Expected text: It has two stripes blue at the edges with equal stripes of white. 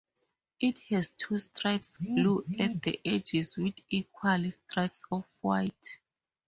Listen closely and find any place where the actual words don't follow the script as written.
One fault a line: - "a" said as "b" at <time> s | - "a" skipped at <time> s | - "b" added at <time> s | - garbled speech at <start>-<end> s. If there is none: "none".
none